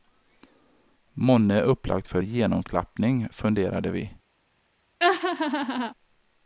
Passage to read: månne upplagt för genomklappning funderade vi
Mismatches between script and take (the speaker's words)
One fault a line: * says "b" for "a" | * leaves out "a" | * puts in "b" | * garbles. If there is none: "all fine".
all fine